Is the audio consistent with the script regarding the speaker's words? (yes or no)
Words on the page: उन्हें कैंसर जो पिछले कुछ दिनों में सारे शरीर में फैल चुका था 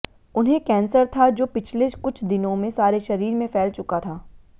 no